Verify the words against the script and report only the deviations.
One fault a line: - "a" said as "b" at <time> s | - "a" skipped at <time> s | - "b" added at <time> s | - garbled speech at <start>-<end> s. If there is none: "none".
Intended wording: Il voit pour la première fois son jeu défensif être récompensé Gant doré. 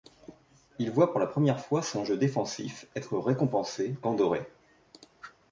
none